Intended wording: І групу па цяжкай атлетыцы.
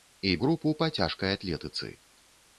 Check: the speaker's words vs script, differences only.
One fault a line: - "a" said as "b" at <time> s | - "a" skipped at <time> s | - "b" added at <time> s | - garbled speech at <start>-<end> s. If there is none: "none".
none